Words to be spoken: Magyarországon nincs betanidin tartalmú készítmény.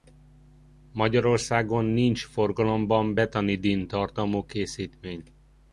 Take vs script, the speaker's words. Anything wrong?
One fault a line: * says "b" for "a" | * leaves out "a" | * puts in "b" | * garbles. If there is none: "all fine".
* puts in "forgalomban"